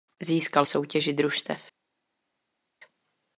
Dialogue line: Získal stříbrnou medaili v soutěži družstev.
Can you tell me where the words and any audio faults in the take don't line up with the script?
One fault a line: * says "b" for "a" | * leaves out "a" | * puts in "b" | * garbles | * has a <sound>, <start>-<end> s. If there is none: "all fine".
* leaves out "stříbrnou medaili"